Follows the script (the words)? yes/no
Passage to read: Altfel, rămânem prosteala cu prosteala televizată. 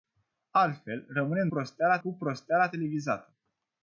yes